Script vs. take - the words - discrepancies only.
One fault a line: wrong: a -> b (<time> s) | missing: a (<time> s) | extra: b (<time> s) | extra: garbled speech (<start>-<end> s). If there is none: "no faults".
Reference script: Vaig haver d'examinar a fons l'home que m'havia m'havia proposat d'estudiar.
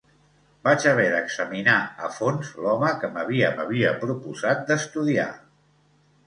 no faults